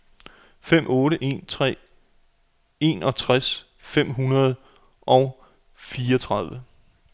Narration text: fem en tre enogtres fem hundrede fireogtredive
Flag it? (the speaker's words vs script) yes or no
yes